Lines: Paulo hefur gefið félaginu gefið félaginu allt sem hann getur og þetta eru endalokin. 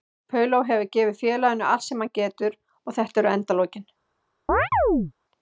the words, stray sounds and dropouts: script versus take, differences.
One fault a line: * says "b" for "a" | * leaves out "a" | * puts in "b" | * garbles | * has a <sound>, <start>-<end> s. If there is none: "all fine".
* leaves out "gefið félaginu"
* has a chirp, 4.5-5.1 s